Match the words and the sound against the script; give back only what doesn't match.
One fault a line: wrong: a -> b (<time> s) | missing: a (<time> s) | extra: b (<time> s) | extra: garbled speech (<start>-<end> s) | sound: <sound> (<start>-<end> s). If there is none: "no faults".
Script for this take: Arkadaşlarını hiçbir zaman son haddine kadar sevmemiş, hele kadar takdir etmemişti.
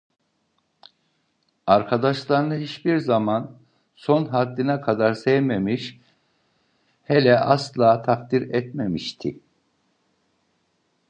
wrong: kadar -> asla (7.4 s)